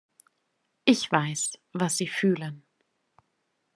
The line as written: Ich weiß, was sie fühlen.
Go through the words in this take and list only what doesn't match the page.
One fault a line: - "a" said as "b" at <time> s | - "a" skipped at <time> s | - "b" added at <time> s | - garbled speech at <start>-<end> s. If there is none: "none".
none